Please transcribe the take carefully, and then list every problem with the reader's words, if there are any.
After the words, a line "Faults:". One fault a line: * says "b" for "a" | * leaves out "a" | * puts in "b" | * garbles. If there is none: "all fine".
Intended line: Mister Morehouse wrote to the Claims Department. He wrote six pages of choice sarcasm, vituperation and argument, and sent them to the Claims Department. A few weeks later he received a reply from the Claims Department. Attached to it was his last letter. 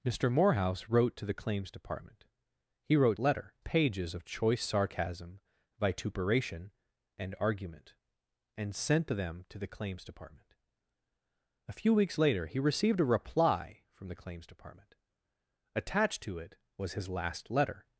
Mister Morehouse wrote to the Claims Department. He wrote letter pages of choice sarcasm, vituperation and argument, and sent them to the Claims Department. A few weeks later he received a reply from the Claims Department. Attached to it was his last letter.
Faults:
* says "letter" for "six"